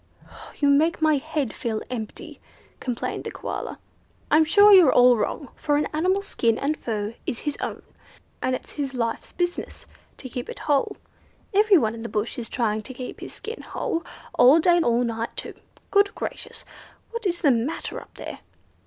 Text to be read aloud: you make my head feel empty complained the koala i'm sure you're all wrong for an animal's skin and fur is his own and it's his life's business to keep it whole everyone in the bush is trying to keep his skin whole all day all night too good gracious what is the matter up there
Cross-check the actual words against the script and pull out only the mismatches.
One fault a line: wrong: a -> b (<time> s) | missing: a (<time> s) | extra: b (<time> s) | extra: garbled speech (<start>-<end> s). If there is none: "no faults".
no faults